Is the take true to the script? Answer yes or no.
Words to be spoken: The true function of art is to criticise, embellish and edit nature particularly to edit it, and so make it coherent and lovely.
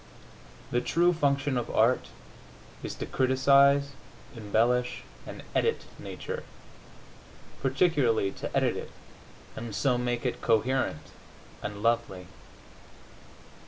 yes